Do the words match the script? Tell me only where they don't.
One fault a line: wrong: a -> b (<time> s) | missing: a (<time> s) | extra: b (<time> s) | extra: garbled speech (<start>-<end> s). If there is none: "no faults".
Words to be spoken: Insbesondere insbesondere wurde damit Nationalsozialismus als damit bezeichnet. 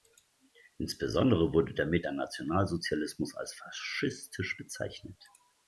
missing: insbesondere (1.5 s)
extra: der (2.0 s)
wrong: damit -> faschistisch (3.5 s)